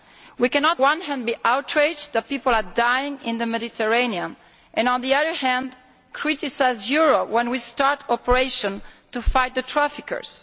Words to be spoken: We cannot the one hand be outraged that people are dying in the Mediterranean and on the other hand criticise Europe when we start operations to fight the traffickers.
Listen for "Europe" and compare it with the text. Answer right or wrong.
right